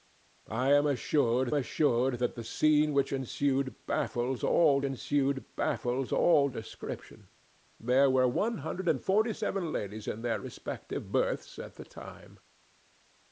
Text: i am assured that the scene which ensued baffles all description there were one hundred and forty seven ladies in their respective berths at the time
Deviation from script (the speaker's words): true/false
true